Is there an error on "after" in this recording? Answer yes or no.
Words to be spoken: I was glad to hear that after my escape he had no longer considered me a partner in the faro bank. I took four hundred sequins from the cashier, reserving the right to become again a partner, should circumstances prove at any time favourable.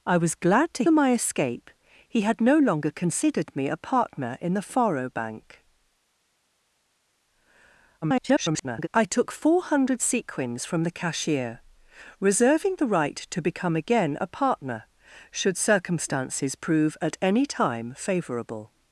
yes